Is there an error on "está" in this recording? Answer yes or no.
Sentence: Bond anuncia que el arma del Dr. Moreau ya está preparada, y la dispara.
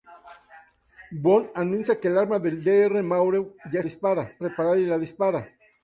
yes